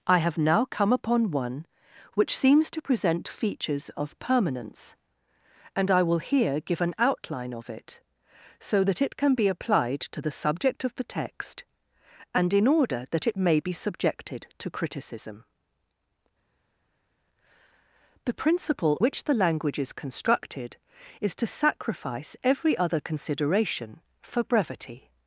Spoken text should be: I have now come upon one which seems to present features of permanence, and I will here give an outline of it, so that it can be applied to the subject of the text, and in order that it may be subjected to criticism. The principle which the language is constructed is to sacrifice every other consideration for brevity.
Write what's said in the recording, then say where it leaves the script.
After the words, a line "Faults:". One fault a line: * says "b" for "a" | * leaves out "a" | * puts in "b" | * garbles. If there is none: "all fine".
I have now come upon one which seems to present features of permanence, and I will here give an outline of it, so that it can be applied to the subject of the text, and in order that it may be subjected to criticism. The principle which the language is constructed is to sacrifice every other consideration for brevity.
Faults:
all fine